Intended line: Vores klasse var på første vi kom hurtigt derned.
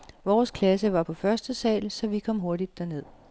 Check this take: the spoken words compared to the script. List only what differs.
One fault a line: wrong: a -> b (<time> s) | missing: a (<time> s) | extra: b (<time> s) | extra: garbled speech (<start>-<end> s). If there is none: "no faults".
extra: sal så (1.5 s)